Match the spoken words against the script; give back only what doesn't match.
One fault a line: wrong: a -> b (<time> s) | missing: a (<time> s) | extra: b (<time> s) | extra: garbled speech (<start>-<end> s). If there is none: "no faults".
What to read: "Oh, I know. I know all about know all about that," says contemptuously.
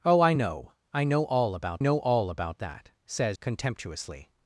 no faults